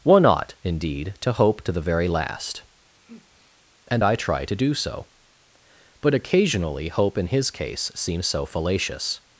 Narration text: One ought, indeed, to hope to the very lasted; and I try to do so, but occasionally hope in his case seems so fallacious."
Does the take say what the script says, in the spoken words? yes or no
no